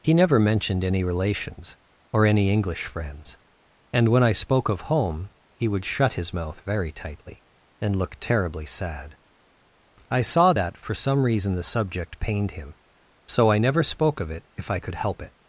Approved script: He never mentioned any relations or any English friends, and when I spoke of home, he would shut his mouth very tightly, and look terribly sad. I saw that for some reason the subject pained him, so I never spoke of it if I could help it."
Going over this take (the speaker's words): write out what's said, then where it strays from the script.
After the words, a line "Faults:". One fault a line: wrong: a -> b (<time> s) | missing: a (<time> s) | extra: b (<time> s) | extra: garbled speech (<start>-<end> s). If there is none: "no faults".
He never mentioned any relations or any English friends, and when I spoke of home, he would shut his mouth very tightly, and look terribly sad. I saw that for some reason the subject pained him, so I never spoke of it if I could help it."
Faults:
no faults